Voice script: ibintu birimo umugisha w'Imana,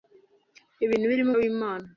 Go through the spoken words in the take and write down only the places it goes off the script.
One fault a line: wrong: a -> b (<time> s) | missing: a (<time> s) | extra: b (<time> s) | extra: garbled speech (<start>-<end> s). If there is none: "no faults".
missing: umugisha (1.3 s)